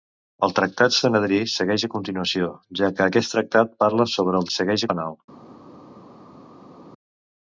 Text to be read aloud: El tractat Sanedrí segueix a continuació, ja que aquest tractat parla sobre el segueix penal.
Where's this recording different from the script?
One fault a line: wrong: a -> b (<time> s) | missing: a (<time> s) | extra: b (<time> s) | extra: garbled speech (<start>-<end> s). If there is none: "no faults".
no faults